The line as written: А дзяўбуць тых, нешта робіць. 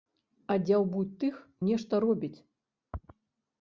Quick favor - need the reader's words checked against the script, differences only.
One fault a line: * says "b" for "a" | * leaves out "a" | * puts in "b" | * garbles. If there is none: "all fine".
all fine